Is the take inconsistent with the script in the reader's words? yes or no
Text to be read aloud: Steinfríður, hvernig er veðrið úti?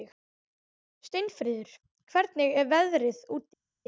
no